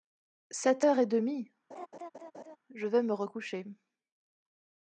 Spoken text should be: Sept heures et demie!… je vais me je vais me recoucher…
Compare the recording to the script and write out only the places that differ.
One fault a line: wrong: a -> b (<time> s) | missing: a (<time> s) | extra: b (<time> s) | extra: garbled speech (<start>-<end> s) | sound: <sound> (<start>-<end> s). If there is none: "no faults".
sound: laugh (1.7-2.6 s)
missing: je vais me (3.1 s)